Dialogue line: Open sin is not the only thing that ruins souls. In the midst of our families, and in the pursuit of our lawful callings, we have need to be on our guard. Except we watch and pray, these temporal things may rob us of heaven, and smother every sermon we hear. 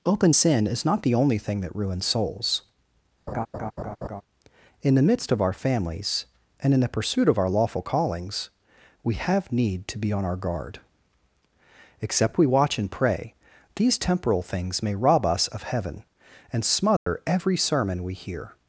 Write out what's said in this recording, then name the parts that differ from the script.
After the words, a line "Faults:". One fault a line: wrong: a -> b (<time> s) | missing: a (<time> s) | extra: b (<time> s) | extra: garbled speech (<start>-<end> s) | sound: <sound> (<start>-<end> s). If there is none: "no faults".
Open sin is not the only thing that ruins souls. In the midst of our families, and in the pursuit of our lawful callings, we have need to be on our guard. Except we watch and pray, these temporal things may rob us of heaven, and smother every sermon we hear.
Faults:
sound: laugh (3.3-4.2 s)
sound: dropout (17.0-17.1 s)